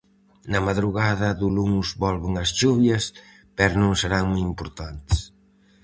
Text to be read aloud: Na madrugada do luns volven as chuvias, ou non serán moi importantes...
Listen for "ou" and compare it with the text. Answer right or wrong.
wrong